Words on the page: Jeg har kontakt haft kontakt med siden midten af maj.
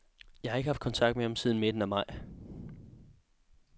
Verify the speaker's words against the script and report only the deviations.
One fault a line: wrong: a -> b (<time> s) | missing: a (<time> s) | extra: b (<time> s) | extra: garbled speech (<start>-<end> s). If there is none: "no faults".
wrong: kontakt -> ikke (0.6 s)
extra: ham (1.2 s)